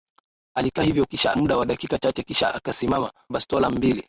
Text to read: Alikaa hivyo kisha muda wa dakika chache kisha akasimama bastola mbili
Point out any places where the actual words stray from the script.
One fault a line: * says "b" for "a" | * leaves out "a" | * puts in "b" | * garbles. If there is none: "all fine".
all fine